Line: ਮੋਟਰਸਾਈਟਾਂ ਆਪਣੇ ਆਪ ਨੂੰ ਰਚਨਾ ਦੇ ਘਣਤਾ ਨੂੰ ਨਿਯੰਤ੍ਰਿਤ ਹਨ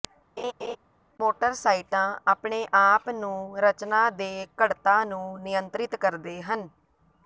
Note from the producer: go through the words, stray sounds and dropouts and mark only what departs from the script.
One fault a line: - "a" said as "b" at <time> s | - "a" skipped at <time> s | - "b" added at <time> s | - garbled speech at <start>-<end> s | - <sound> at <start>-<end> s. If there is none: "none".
- laugh at 0.4-0.8 s
- "ਕਰਦੇ" added at 6.0 s